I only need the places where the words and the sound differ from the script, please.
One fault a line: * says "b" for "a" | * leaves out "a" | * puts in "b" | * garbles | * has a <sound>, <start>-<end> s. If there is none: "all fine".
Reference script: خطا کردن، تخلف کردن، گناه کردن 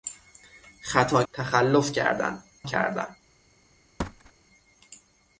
* leaves out "کردن"
* leaves out "گناه"
* has a thud, 4.0-4.3 s